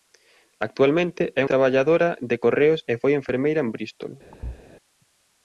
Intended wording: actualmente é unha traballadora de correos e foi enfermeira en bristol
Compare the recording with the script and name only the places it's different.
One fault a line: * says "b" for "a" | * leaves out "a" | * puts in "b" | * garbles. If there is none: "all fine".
* leaves out "unha"